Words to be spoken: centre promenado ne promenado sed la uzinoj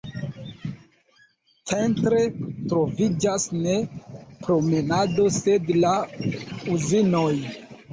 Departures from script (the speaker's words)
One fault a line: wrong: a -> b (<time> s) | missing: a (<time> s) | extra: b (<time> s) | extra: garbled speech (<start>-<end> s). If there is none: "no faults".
wrong: promenado -> troviĝas (2.7 s)